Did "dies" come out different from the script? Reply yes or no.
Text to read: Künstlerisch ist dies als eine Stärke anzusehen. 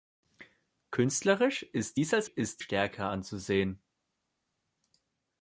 no